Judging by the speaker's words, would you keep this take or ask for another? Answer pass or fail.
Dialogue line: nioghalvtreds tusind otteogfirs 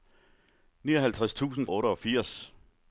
pass